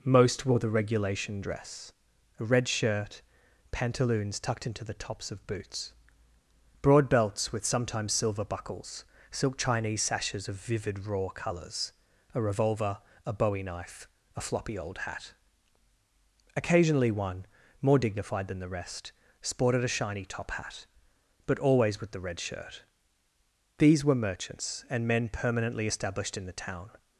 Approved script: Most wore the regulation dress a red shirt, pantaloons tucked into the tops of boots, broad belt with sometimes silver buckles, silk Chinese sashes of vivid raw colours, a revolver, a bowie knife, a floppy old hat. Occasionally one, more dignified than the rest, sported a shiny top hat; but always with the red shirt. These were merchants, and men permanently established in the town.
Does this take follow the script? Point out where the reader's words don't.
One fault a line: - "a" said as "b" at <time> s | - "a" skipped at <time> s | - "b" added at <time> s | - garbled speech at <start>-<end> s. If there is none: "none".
- "belt" said as "belts" at 7.1 s